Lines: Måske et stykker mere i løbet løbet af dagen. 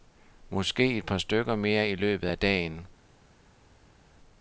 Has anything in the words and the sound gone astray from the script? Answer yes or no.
yes